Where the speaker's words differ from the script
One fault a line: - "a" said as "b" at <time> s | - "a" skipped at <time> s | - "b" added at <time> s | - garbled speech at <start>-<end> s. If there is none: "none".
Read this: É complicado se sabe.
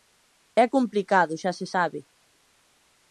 - "xa" added at 1.4 s